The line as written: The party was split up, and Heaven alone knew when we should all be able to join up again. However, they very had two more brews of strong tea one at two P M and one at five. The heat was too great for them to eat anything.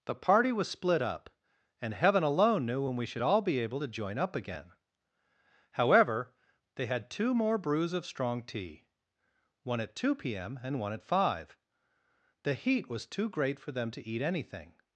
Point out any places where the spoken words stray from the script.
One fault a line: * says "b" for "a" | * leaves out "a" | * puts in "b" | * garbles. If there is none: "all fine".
* leaves out "very"